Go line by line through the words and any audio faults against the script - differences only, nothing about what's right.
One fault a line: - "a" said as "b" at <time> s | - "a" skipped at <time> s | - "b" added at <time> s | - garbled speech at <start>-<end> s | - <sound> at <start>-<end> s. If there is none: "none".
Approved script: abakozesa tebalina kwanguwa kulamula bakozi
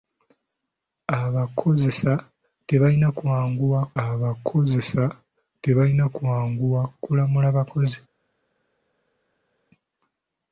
- "abakozesa tebalina kwanguwa" added at 4.0 s